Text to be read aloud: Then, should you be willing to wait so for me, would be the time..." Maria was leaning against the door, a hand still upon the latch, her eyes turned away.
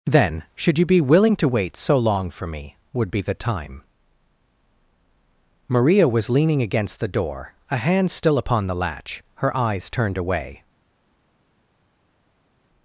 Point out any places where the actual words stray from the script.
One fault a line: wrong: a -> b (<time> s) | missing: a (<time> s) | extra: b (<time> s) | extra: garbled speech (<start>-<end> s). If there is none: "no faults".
extra: long (1.9 s)